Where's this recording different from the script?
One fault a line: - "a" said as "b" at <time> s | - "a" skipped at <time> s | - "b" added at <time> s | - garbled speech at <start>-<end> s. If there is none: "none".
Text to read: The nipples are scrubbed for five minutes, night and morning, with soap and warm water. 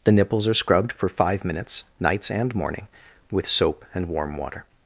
- "night" said as "nights" at 2.0 s